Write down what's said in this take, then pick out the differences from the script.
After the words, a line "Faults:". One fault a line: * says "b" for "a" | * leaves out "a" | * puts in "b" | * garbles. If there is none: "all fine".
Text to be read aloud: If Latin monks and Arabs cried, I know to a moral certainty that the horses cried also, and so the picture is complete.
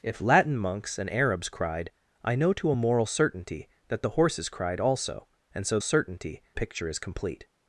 If Latin monks and Arabs cried, I know to a moral certainty that the horses cried also, and so certainty picture is complete.
Faults:
* says "certainty" for "the"